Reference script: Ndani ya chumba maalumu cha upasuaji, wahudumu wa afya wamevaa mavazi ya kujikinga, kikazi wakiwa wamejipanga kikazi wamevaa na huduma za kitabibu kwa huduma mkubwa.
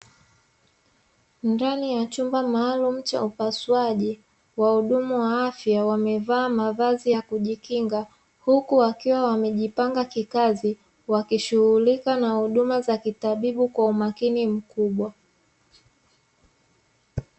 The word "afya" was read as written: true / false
true